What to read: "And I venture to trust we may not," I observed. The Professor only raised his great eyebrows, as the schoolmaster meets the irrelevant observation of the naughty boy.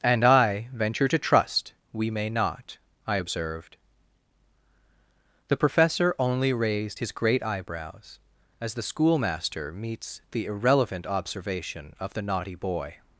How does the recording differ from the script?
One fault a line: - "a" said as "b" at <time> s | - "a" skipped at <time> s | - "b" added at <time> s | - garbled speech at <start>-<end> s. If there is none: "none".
none